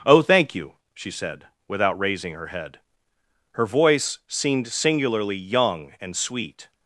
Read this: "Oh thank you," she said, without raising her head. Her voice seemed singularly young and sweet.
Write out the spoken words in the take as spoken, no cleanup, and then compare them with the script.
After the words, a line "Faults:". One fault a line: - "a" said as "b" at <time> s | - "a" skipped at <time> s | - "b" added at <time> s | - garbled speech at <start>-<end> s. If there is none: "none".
"Oh thank you," she said, without raising her head. Her voice seemed singularly young and sweet.
Faults:
none